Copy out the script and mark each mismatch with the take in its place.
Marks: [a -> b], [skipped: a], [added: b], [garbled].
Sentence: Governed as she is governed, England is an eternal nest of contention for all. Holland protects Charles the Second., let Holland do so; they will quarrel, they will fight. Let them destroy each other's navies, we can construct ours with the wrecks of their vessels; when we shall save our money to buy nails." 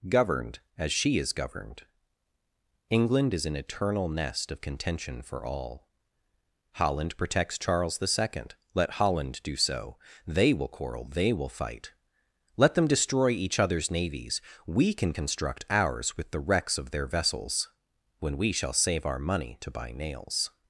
Governed as she is governed, England is an eternal nest of contention for all. Holland protects Charles the Second., let Holland do so; they will quarrel, they will fight. Let them destroy each other's navies, we can construct ours with the wrecks of their vessels; when we shall save our money to buy nails."